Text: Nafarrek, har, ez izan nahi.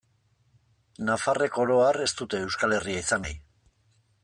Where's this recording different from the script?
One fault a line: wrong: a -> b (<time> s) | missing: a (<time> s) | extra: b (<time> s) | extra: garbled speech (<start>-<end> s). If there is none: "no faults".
extra: oro (1.6 s)
extra: dute Euskal Herria (2.2 s)